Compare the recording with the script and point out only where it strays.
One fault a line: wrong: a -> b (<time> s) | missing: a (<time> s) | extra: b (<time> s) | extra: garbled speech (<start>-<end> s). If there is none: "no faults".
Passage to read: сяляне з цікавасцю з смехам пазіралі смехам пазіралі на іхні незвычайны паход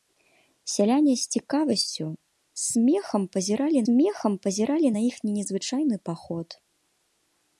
no faults